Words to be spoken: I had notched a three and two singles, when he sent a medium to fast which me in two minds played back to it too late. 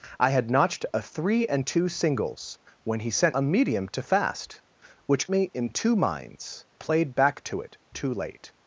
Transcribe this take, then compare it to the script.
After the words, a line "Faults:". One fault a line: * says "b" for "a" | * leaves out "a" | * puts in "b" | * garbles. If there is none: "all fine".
I had notched a three and two singles, when he sent a medium to fast which me in two minds played back to it too late.
Faults:
all fine